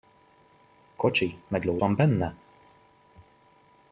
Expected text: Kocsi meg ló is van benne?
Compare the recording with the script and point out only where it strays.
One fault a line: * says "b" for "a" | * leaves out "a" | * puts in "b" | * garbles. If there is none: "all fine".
* leaves out "is"